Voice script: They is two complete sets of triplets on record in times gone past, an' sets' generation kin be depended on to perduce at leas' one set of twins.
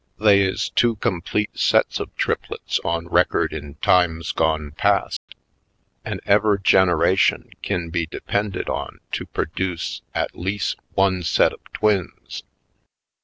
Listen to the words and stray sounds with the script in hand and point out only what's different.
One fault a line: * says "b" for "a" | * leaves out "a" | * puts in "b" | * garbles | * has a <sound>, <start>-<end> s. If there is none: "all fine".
* has a dropout, 5.2-5.3 s
* says "ever" for "sets"